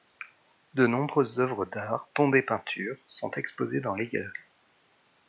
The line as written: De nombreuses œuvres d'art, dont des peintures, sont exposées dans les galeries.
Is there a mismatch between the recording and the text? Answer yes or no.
no